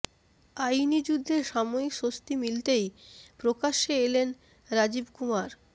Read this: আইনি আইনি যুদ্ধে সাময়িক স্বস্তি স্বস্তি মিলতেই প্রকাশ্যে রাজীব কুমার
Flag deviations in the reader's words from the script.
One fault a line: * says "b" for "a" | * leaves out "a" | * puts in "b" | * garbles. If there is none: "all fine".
* leaves out "আইনি"
* leaves out "স্বস্তি"
* puts in "এলেন"